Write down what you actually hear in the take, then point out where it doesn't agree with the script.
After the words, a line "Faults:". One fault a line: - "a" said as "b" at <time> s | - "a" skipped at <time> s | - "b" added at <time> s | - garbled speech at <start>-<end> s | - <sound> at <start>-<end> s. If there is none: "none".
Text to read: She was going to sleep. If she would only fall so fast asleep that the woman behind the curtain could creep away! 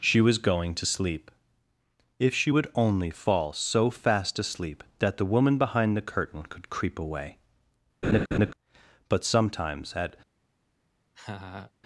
She was going to sleep. If she would only fall so fast asleep that the woman behind the curtain could creep away! But sometimes at
Faults:
- laugh at 8.0-8.5 s
- "But sometimes at" added at 9.1 s
- laugh at 11.1-11.7 s